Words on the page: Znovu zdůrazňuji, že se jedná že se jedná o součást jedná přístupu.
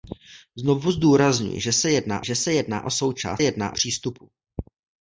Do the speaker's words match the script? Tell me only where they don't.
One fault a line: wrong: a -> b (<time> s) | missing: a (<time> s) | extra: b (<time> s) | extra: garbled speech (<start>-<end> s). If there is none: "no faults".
no faults